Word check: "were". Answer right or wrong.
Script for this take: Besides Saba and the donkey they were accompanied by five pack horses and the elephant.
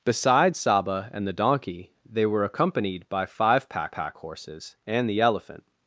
right